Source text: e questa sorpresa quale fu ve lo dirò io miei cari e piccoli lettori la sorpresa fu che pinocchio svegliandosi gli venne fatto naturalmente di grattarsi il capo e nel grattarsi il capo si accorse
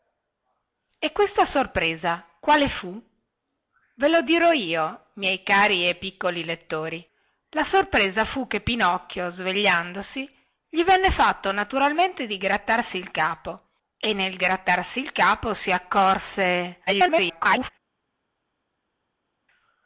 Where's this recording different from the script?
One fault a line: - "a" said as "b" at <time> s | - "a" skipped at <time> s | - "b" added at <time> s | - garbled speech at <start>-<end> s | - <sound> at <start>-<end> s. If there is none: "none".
- garbled speech at 16.9-17.7 s